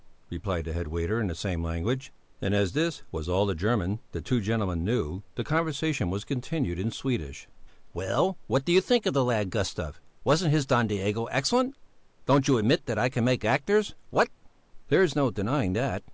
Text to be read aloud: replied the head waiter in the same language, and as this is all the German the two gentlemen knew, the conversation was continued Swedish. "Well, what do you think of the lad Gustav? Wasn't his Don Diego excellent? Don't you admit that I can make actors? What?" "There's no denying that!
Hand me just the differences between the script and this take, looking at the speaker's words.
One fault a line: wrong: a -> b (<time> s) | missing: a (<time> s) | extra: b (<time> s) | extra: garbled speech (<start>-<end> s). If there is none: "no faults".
wrong: is -> was (3.1 s)
extra: in (6.8 s)